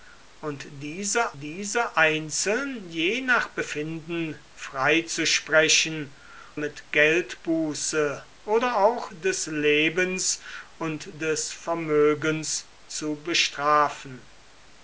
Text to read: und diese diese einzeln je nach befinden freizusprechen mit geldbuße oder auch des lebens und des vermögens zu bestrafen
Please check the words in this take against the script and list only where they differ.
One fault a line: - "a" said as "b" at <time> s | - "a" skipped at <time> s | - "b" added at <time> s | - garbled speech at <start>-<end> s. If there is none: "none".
none